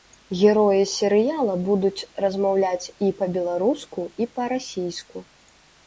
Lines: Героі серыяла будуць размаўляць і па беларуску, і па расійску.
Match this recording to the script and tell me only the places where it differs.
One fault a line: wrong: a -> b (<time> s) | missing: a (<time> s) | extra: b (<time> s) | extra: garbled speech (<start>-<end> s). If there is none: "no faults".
no faults